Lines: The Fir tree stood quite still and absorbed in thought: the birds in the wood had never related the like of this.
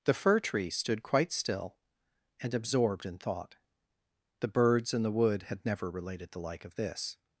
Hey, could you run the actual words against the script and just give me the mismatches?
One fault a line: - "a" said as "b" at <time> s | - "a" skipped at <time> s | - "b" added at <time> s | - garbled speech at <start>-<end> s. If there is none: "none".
none